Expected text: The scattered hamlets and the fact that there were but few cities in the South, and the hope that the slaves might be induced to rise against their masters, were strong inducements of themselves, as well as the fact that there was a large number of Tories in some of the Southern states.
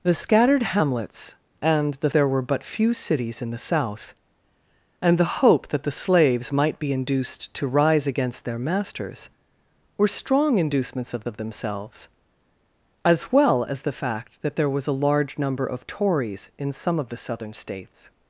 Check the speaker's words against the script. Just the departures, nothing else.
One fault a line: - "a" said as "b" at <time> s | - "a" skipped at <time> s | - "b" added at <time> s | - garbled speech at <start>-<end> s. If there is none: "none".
- "fact that" skipped at 2.1 s
- "of" added at 11.2 s